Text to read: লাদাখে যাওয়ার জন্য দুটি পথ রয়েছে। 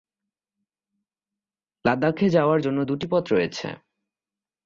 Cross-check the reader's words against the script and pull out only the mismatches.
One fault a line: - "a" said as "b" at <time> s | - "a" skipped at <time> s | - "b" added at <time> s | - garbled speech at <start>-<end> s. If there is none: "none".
none